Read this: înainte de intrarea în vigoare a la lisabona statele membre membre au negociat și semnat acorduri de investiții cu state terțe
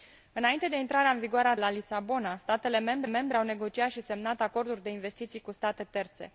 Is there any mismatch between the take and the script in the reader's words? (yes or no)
no